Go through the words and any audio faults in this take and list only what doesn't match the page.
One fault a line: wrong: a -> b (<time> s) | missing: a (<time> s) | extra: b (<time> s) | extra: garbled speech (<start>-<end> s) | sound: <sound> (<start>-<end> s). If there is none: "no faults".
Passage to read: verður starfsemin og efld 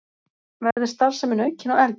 sound: dropout (0.7-0.8 s)
extra: aukin (1.4 s)